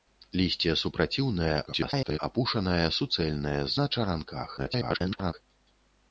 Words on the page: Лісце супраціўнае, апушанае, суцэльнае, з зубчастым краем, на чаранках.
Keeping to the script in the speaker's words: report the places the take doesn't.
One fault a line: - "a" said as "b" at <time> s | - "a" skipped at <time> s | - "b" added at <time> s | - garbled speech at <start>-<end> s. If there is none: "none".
- garbled speech at 1.7-2.2 s
- "зубчастым краем" skipped at 3.7 s
- garbled speech at 4.6-5.3 s